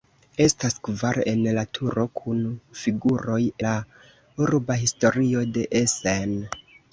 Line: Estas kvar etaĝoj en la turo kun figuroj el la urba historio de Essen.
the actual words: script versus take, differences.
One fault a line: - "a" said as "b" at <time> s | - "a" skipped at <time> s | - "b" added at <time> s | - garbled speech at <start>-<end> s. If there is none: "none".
- "etaĝoj" skipped at 1.2 s
- "el" skipped at 3.4 s